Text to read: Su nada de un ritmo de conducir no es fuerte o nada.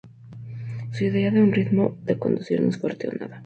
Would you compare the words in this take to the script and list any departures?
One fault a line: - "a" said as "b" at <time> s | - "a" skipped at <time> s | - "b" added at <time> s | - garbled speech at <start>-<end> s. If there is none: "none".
- "nada" said as "idea" at 1.0 s